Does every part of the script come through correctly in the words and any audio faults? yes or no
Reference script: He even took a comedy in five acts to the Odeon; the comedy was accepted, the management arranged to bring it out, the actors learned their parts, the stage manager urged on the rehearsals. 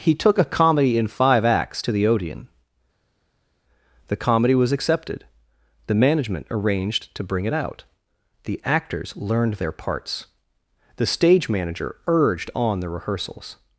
no